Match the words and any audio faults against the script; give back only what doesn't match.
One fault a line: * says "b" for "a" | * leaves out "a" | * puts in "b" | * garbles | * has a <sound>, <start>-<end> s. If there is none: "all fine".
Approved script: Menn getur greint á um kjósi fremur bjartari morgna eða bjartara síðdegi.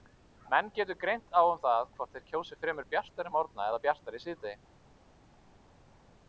* puts in "það hvort þeir"